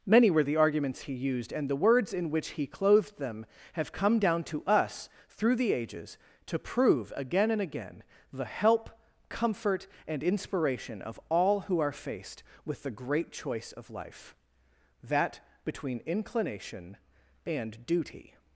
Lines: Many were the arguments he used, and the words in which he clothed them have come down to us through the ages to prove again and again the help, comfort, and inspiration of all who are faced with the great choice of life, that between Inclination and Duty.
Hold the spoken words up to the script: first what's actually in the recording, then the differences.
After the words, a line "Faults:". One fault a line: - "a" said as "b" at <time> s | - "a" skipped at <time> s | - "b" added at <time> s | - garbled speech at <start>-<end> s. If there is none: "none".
Many were the arguments he used, and the words in which he clothed them have come down to us through the ages to prove again and again the help, comfort, and inspiration of all who are faced with the great choice of life, that between Inclination and Duty.
Faults:
none